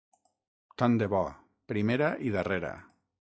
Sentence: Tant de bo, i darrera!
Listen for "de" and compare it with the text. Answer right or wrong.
right